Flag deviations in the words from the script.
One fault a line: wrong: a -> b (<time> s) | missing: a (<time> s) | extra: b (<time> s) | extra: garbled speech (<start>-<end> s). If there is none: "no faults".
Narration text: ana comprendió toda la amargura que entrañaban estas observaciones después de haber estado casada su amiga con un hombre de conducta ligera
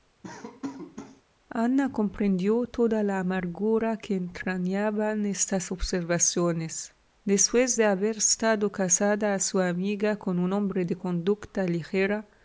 no faults